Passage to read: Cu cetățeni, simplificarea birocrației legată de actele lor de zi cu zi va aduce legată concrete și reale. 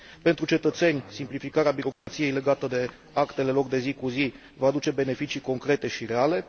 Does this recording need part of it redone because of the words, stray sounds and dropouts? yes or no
yes